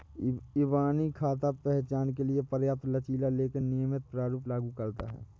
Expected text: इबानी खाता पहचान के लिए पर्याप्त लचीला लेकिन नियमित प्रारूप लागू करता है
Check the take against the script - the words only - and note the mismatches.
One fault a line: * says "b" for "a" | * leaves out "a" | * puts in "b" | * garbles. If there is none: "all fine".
all fine